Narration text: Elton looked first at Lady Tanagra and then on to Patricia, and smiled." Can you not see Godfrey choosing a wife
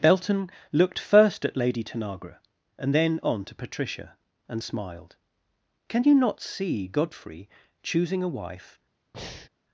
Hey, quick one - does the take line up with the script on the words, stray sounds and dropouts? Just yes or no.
no